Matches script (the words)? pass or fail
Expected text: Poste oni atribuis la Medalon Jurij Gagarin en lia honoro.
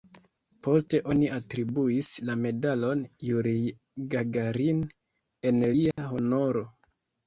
pass